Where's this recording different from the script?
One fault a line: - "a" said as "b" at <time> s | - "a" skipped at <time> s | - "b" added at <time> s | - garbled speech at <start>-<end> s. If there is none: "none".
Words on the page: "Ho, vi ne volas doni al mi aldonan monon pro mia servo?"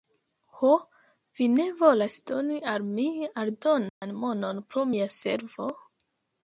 none